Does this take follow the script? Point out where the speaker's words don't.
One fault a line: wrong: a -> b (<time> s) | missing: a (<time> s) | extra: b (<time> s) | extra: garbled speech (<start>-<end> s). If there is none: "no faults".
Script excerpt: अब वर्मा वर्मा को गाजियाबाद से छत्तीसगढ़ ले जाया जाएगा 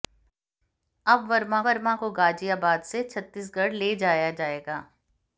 no faults